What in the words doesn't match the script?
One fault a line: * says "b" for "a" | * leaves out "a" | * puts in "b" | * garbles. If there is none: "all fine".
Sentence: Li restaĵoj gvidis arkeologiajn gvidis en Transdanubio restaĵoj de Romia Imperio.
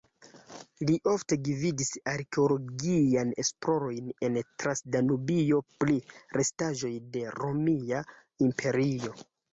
* says "ofte" for "restaĵoj"
* says "esplorojn" for "gvidis"
* puts in "pri"